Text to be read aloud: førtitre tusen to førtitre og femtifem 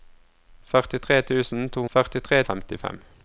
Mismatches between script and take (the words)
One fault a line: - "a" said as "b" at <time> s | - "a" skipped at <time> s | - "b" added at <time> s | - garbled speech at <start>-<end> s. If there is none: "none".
none